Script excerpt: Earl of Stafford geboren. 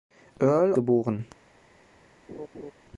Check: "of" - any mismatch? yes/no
yes